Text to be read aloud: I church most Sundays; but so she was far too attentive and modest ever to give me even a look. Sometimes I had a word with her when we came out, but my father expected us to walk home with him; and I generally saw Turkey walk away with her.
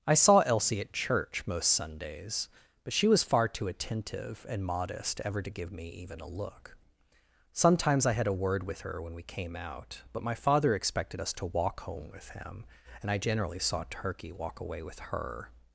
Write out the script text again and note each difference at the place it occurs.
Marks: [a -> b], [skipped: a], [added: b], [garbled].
I [added: saw Elsie at] church most Sundays; but [skipped: so] she was far too attentive and modest ever to give me even a look. Sometimes I had a word with her when we came out, but my father expected us to walk home with him; and I generally saw Turkey walk away with her.